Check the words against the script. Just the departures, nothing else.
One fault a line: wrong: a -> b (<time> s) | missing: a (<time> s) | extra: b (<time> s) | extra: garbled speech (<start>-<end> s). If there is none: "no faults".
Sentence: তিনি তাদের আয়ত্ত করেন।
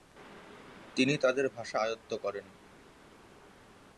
extra: ভাষা (1.5 s)